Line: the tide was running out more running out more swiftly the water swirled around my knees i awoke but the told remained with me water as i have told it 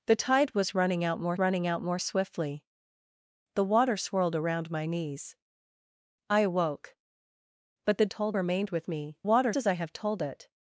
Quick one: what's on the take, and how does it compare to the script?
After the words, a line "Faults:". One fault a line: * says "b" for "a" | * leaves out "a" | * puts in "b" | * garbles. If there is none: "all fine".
the tide was running out more running out more swiftly the water swirled around my knees i awoke but the told remained with me water as i have told it
Faults:
all fine